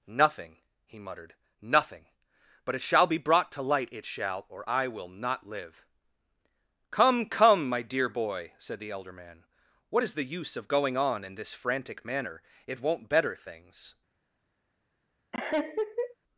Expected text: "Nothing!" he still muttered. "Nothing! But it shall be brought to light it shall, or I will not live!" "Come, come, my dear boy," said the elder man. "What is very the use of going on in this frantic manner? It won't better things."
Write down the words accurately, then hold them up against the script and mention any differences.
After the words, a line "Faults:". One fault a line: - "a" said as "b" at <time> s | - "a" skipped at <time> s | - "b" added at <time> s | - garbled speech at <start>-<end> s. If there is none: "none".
"Nothing!" he muttered. "Nothing! But it shall be brought to light it shall, or I will not live!" "Come, come, my dear boy," said the elder man. "What is the use of going on in this frantic manner? It won't better things."
Faults:
- "still" skipped at 1.0 s
- "very" skipped at 10.1 s